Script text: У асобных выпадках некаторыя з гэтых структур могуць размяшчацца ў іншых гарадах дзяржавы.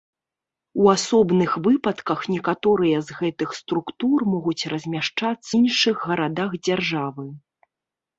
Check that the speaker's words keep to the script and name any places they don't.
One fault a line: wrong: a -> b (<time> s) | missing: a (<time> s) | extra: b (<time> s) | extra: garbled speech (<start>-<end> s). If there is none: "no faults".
missing: ў (5.5 s)